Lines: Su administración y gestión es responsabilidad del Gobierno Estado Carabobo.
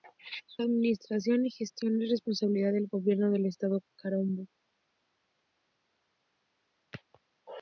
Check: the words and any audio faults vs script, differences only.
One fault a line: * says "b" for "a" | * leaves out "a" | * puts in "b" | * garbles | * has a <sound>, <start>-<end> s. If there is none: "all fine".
* puts in "del"